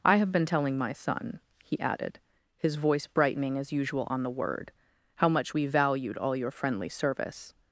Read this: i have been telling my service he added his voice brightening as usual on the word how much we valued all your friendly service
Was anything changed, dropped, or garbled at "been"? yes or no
no